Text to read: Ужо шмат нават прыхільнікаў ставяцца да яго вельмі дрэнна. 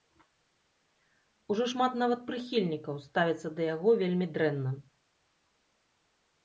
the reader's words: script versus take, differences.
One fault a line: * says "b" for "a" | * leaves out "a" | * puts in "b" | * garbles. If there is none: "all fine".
all fine